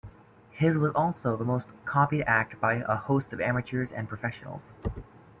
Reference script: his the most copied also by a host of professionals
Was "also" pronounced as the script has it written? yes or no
no